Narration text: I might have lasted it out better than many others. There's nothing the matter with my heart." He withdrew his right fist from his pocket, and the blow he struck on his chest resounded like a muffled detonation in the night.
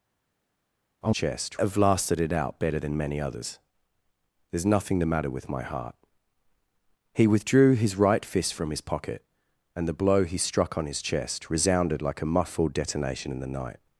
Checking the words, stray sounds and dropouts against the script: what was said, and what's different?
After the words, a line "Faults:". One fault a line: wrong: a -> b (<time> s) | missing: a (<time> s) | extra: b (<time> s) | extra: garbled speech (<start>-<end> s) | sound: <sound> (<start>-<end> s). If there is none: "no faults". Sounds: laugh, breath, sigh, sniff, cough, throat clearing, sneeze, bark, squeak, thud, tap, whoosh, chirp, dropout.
I chest have lasted it out better than many others. There's nothing the matter with my heart." He withdrew his right fist from his pocket, and the blow he struck on his chest resounded like a muffled detonation in the night.
Faults:
wrong: might -> chest (1.1 s)